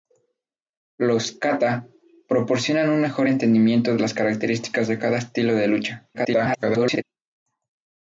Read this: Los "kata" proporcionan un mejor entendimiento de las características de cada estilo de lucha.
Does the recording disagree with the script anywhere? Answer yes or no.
yes